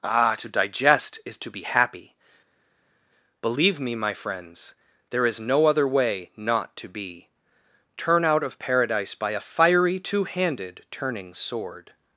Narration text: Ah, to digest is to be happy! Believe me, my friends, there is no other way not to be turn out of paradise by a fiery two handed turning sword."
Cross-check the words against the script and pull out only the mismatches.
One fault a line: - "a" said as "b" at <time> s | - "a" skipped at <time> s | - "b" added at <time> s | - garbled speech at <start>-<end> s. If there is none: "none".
none